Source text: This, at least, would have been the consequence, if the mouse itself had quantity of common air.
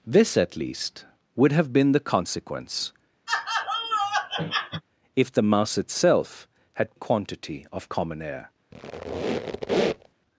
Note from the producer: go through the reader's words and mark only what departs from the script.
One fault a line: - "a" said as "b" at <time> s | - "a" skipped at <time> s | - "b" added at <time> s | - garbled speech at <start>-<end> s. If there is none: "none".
none